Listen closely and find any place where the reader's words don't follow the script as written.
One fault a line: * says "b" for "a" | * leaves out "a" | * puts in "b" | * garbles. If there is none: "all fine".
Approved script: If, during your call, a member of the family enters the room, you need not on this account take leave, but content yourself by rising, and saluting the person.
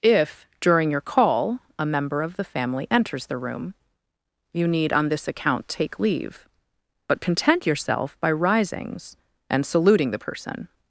* leaves out "not"
* says "risings" for "rising"